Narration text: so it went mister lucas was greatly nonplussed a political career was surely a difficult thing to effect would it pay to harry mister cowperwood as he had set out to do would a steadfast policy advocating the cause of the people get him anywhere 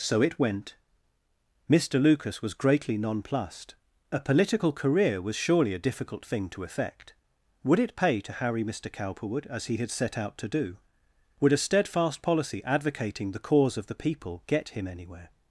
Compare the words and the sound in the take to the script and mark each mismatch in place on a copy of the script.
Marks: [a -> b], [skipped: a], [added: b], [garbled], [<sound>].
so it went mister lucas was greatly nonplussed a political career was surely a difficult thing to effect would it pay to harry mister cowperwood as he had set out to do would a steadfast policy advocating the cause of the people get him anywhere